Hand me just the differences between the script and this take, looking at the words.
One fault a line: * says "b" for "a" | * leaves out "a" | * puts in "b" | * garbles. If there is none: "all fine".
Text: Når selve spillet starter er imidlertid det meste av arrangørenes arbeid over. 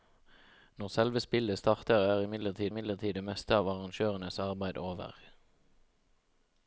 * puts in "imidlertid"